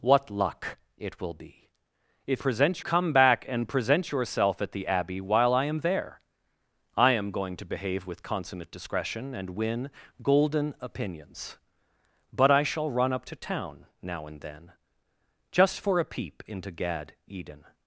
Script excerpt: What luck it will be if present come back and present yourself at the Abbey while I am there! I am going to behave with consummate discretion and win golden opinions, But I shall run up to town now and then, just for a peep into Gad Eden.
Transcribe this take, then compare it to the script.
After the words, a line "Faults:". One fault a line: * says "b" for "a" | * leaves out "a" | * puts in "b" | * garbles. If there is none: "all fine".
What luck it will be if present come back and present yourself at the Abbey while I am there! I am going to behave with consummate discretion and win golden opinions, But I shall run up to town now and then, just for a peep into Gad Eden.
Faults:
all fine